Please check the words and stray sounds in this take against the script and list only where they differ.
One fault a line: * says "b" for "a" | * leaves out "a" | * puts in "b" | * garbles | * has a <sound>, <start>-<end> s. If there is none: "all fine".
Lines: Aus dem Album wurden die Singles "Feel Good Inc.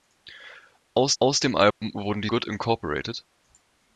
* puts in "aus"
* has a dropout, 1.7-1.8 s
* leaves out "Singles Feel"